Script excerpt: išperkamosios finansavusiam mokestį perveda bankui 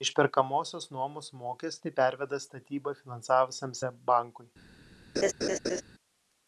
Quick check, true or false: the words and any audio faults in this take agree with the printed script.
false